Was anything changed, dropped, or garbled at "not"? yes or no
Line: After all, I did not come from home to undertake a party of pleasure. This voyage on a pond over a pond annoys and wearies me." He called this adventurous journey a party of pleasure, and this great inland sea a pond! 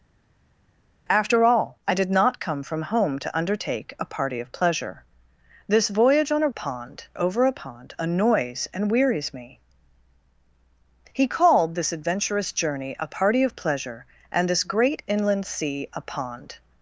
no